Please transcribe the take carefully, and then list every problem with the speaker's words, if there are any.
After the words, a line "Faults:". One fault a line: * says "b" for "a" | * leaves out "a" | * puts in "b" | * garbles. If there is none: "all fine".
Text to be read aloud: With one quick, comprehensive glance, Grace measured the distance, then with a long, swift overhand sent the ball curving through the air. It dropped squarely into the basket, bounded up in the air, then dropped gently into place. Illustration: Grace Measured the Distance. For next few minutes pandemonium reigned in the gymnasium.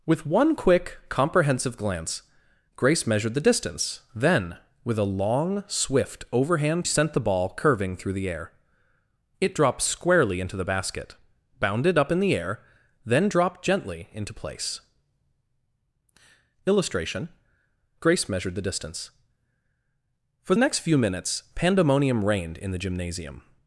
With one quick, comprehensive glance, Grace measured the distance, then with a long, swift overhand sent the ball curving through the air. It dropped squarely into the basket, bounded up in the air, then dropped gently into place. Illustration: Grace Measured the Distance. For next few minutes pandemonium reigned in the gymnasium.
Faults:
all fine